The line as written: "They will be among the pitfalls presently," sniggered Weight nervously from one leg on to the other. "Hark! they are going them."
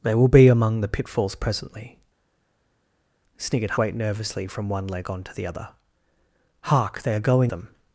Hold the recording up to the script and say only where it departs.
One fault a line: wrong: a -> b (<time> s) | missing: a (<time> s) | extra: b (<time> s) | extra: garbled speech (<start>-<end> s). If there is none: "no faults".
no faults